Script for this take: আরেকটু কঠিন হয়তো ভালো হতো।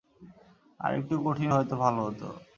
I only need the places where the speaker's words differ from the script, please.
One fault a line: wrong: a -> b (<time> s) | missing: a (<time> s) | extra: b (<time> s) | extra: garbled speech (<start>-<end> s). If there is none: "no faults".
no faults